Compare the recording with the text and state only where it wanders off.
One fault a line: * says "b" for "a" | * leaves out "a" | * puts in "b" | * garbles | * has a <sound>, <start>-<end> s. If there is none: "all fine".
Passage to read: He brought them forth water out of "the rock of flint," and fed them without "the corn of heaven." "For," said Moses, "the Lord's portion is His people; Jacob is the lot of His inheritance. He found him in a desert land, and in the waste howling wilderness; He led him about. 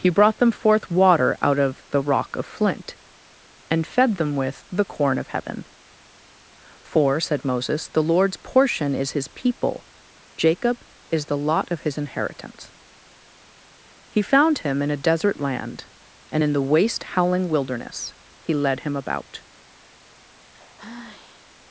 * says "with" for "without"
* has a sigh, 20.5-21.5 s